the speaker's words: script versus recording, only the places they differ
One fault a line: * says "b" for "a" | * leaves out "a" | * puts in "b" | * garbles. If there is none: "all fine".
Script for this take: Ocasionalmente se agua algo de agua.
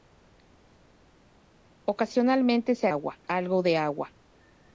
all fine